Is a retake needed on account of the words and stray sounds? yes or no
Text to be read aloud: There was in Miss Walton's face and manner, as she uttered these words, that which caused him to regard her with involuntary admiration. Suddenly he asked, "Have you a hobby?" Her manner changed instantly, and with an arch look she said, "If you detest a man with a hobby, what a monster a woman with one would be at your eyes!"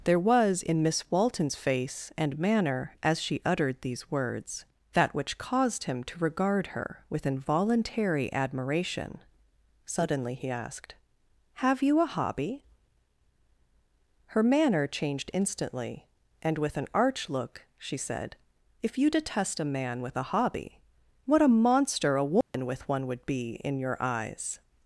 yes